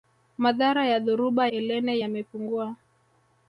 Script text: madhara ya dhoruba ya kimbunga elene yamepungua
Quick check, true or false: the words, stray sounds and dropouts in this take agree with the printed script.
false